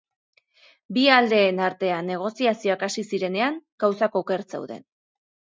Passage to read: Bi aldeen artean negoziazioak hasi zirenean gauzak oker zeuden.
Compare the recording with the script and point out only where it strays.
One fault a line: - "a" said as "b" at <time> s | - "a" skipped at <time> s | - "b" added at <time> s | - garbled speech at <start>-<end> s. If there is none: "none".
none